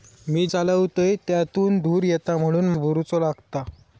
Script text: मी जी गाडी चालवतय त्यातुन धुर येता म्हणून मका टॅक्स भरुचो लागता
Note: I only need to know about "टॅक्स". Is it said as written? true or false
false